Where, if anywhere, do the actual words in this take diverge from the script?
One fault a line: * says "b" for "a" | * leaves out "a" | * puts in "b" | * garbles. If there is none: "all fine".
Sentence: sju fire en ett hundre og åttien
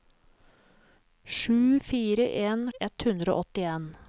all fine